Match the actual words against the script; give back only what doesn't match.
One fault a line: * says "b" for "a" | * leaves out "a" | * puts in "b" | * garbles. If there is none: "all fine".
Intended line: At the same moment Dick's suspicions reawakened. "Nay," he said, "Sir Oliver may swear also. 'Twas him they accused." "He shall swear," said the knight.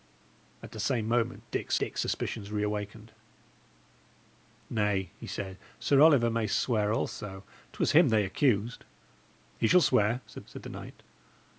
* puts in "Dick's"
* puts in "said"